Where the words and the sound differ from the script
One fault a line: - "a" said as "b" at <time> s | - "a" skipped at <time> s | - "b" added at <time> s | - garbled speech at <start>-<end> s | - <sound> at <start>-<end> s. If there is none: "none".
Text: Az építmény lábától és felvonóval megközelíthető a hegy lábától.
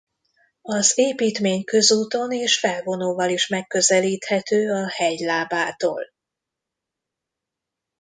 - "lábától" said as "közúton" at 1.6 s
- "is" added at 3.3 s